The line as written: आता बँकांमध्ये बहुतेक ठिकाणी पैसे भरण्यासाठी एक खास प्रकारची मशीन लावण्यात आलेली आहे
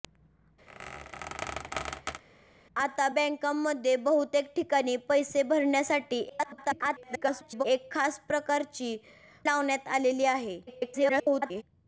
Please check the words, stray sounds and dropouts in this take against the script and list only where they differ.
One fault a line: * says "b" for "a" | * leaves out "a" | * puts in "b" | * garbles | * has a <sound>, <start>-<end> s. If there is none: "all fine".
* has a squeak, 0.7-2.2 s
* garbles
* leaves out "मशीन"
* garbles